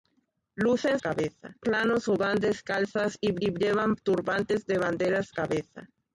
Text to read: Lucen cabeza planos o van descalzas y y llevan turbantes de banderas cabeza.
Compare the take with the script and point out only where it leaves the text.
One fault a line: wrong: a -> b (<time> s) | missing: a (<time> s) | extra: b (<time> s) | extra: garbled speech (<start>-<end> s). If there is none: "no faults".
no faults